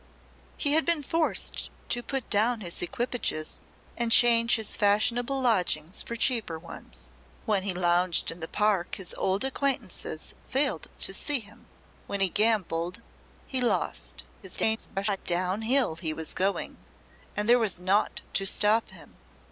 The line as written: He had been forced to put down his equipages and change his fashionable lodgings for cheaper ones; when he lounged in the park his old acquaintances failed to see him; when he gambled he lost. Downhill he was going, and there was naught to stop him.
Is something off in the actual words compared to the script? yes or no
yes